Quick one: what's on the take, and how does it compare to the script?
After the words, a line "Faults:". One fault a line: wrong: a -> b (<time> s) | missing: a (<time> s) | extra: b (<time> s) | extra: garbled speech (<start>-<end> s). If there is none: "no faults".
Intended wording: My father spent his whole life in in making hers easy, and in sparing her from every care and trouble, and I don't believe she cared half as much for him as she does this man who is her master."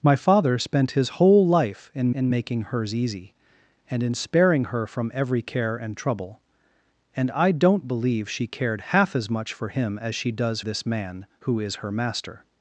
My father spent his whole life in in making hers easy, and in sparing her from every care and trouble, and I don't believe she cared half as much for him as she does this man who is her master."
Faults:
no faults